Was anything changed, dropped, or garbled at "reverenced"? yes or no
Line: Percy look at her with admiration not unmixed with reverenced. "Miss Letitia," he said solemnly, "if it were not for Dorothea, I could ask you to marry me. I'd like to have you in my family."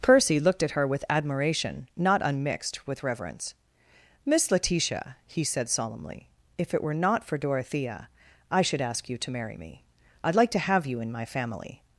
yes